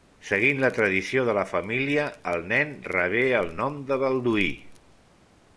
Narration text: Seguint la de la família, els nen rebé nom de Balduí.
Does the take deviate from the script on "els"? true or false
true